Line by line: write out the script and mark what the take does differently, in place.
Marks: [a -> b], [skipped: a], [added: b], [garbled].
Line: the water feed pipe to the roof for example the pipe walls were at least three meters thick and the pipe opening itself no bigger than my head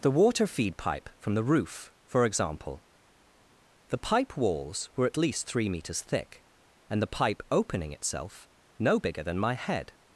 the water feed pipe [to -> from] the roof for example the pipe walls were at least three meters thick and the pipe opening itself no bigger than my head